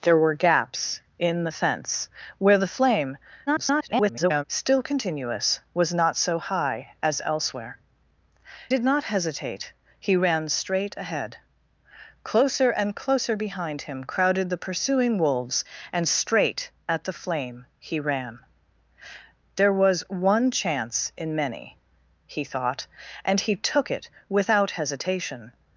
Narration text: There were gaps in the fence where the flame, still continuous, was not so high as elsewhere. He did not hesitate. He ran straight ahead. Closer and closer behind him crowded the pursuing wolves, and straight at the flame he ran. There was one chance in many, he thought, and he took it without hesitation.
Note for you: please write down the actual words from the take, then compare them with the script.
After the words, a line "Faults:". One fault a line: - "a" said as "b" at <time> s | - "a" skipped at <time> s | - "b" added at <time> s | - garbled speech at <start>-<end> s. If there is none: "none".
There were gaps in the fence where the flame, [garbled] still continuous, was not so high as elsewhere. Did not hesitate. He ran straight ahead. Closer and closer behind him crowded the pursuing wolves, and straight at the flame he ran. There was one chance in many, he thought, and he took it without hesitation.
Faults:
- garbled speech at 3.5-4.4 s
- "He" skipped at 7.8 s